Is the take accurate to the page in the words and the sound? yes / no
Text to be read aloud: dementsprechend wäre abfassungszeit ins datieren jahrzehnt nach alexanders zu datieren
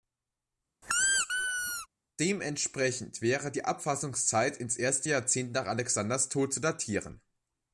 no